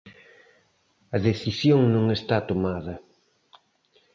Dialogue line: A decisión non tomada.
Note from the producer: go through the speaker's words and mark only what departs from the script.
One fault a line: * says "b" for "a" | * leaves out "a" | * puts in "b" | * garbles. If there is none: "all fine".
* puts in "está"